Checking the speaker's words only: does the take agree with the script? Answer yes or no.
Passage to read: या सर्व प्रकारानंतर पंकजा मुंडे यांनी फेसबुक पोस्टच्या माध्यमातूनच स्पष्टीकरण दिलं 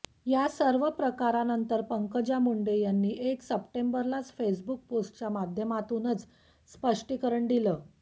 no